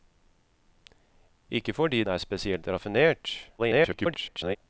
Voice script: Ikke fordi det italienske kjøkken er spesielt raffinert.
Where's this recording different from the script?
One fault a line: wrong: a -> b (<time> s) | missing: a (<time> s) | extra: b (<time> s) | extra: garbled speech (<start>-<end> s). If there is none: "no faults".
missing: det italienske kjøkken (2.0 s)
extra: garbled speech (3.6-4.6 s)